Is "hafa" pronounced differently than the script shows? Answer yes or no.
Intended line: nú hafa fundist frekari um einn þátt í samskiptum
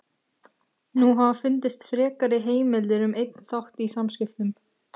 no